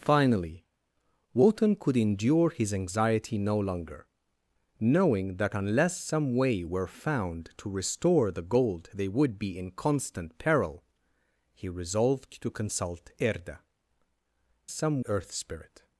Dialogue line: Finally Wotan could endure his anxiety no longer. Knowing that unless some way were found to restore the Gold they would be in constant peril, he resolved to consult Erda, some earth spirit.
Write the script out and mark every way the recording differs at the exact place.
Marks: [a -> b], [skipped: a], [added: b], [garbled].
Finally Wotan could endure his anxiety no longer. Knowing that unless some way were found to restore the Gold they would be in constant peril, he resolved to consult Erda, some earth spirit.